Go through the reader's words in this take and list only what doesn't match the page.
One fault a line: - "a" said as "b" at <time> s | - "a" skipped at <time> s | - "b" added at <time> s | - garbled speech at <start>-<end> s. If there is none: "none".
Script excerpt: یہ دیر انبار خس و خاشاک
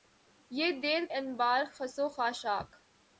none